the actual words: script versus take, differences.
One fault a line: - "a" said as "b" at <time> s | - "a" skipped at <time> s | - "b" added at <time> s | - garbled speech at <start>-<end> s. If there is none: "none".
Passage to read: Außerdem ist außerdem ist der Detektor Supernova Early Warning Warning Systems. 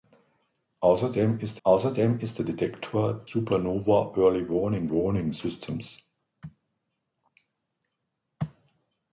none